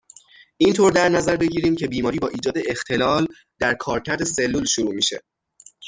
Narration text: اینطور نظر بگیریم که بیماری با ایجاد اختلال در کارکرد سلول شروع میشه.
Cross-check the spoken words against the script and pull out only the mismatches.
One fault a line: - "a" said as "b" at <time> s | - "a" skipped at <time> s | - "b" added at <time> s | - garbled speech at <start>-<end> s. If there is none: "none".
- "در" added at 0.9 s